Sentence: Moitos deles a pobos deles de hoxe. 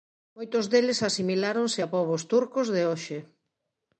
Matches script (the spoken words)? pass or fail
fail